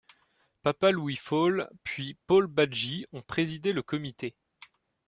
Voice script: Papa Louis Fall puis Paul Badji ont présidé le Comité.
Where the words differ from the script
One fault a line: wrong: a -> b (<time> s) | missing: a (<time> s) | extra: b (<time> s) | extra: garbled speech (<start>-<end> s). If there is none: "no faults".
no faults